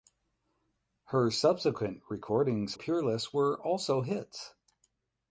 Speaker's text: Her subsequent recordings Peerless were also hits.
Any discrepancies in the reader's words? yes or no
no